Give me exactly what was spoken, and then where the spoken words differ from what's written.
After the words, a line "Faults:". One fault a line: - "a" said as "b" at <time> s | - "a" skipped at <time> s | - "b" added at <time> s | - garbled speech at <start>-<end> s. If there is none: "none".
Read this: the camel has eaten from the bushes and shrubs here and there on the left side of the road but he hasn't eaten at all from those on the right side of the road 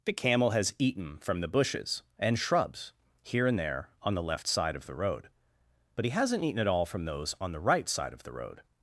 the camel has eaten from the bushes and shrubs here and there on the left side of the road but he hasn't eaten at all from those on the right side of the road
Faults:
none